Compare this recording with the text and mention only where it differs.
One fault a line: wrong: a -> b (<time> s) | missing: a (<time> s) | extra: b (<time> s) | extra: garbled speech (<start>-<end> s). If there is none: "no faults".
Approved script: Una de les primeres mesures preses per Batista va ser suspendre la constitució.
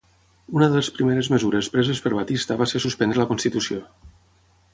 no faults